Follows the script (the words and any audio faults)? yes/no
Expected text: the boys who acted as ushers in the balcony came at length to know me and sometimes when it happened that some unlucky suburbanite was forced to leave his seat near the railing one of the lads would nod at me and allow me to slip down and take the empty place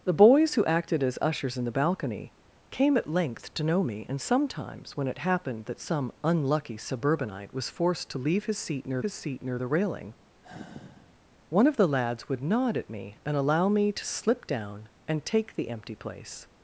no